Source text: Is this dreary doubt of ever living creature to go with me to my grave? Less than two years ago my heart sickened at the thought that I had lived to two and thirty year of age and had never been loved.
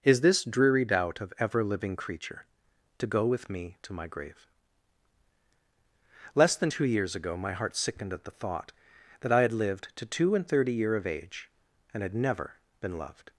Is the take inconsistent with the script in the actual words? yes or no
no